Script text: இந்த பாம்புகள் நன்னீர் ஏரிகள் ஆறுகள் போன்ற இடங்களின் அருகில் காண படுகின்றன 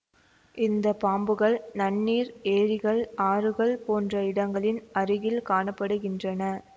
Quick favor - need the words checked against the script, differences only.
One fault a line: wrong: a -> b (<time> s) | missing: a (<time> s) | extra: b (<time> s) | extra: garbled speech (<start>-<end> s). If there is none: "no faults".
no faults